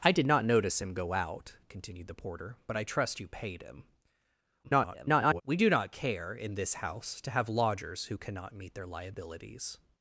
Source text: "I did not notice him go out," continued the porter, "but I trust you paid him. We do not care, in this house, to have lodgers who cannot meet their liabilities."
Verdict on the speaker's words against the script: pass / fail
fail